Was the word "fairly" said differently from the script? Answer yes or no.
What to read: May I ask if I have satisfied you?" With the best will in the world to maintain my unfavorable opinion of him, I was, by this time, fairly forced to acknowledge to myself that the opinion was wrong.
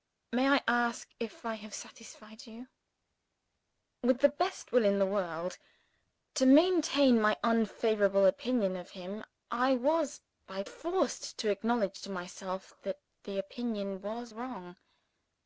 yes